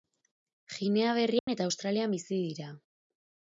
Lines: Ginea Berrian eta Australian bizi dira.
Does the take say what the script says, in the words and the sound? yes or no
no